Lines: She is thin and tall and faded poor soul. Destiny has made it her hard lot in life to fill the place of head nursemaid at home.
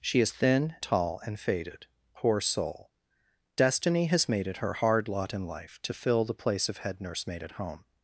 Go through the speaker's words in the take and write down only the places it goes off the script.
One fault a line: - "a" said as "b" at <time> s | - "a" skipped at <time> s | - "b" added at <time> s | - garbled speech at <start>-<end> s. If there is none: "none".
- "and" skipped at 0.8 s